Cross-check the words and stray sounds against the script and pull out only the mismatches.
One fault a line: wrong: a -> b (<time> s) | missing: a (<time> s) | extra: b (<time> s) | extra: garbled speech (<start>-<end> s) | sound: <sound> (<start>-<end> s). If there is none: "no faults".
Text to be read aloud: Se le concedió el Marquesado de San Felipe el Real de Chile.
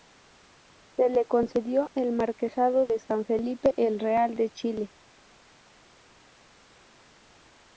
no faults